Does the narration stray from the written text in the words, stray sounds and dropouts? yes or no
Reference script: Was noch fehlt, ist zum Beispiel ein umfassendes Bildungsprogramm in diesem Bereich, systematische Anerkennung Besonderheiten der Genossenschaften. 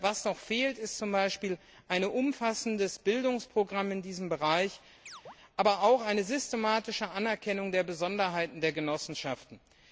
yes